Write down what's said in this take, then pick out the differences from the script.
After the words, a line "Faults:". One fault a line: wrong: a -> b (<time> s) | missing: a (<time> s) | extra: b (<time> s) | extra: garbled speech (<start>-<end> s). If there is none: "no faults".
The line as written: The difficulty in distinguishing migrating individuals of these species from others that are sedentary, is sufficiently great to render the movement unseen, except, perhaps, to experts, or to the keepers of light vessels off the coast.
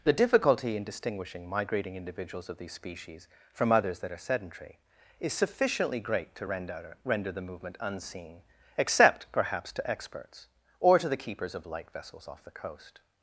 The difficulty in distinguishing migrating individuals of these species from others that are sedentary, is sufficiently great to render render the movement unseen, except, perhaps, to experts, or to the keepers of light vessels off the coast.
Faults:
extra: render (7.0 s)